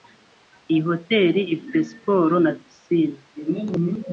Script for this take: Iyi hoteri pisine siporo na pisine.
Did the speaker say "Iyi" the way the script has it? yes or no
yes